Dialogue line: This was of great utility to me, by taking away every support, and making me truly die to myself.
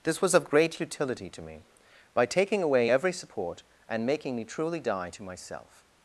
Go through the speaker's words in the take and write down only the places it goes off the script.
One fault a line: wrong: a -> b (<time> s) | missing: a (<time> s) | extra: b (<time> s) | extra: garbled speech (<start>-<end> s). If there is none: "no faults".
no faults